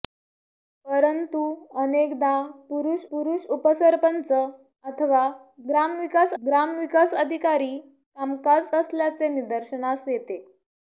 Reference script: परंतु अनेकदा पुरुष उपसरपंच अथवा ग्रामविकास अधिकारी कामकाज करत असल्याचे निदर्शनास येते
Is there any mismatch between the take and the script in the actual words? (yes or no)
yes